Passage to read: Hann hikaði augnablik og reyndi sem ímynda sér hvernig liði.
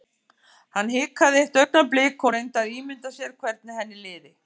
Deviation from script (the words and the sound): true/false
true